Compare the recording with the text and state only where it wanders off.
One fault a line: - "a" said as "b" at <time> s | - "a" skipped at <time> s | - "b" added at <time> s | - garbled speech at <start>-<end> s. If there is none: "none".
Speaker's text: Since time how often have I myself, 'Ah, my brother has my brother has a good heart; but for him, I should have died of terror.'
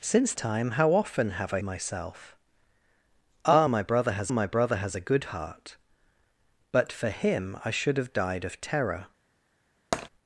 none